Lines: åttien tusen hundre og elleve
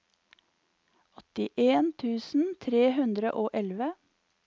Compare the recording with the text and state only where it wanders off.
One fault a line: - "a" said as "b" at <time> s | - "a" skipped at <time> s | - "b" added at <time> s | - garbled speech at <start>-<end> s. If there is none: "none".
- "tre" added at 2.7 s